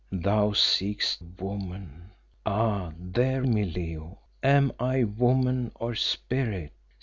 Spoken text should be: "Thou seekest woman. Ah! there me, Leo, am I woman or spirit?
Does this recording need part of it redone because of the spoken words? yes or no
no